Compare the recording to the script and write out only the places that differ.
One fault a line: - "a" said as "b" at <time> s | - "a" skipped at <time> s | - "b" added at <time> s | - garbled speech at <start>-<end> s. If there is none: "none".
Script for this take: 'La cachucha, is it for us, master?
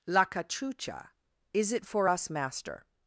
none